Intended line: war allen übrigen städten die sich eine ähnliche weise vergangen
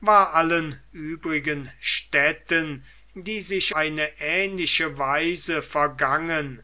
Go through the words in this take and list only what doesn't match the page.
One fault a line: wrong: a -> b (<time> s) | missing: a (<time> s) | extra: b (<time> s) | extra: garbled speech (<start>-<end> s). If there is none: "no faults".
no faults